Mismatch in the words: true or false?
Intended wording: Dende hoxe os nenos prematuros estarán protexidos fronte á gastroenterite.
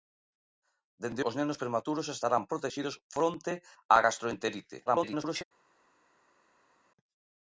true